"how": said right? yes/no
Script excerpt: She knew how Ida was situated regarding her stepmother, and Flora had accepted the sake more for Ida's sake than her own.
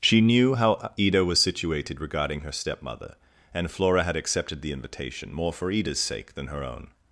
yes